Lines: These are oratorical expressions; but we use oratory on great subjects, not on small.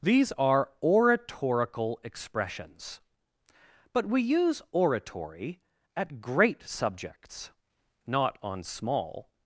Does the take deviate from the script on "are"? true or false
false